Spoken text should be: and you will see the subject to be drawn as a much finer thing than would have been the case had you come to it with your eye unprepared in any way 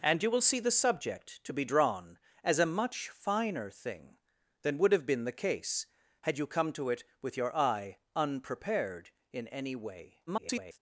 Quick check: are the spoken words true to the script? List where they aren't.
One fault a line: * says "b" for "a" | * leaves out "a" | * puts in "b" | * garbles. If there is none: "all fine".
* garbles